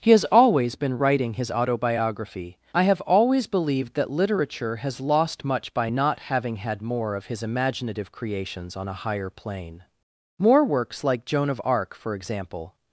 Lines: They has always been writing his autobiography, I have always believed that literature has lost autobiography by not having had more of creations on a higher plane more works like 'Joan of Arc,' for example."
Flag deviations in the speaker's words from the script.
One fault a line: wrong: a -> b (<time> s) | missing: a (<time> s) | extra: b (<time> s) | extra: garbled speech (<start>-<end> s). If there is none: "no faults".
wrong: They -> He (0.0 s)
wrong: autobiography -> much (5.5 s)
extra: his imaginative (7.3 s)